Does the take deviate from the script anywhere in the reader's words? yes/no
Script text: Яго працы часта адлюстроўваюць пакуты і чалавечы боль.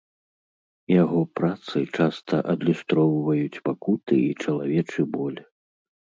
no